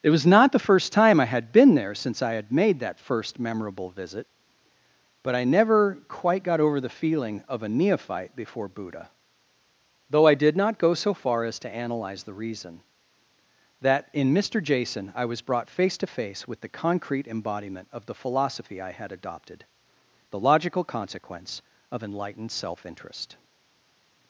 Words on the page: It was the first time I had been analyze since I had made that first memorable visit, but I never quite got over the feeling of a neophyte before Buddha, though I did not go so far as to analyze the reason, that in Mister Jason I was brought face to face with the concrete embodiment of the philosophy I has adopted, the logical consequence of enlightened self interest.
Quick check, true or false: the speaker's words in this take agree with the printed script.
false